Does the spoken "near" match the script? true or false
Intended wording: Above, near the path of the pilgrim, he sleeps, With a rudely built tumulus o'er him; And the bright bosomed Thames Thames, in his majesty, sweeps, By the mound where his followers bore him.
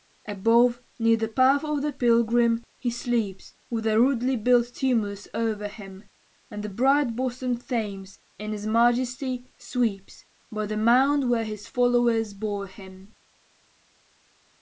true